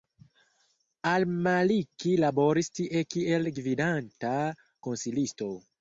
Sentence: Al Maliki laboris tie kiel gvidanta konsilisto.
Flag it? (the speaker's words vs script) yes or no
no